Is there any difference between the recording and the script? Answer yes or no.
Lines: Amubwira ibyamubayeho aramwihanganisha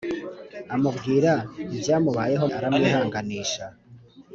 no